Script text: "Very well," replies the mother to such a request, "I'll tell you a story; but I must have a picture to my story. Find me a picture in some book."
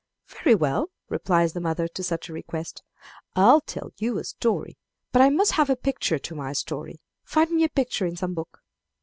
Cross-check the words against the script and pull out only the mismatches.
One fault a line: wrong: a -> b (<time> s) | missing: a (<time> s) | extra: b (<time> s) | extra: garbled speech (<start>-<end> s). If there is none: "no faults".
no faults